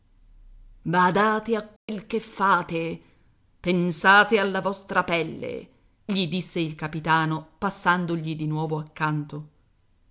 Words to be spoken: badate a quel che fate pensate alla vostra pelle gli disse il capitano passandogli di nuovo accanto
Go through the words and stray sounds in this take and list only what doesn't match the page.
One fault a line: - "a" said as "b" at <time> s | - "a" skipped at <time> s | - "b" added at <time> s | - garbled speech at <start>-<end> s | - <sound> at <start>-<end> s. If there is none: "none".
- dropout at 1.8-1.9 s